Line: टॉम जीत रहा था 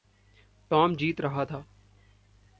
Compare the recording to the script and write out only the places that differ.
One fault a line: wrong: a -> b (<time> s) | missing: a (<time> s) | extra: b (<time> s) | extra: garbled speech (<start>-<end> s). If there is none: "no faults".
no faults